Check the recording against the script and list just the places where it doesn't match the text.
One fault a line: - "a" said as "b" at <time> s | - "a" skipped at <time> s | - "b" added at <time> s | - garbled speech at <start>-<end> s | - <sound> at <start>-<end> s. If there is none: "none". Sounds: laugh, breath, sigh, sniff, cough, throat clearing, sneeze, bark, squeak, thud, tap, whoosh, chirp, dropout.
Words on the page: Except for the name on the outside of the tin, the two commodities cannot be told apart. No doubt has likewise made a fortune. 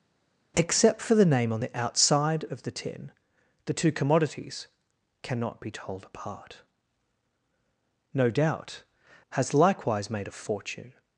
none